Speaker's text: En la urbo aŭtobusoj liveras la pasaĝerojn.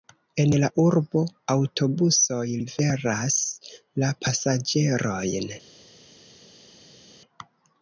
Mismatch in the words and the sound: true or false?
false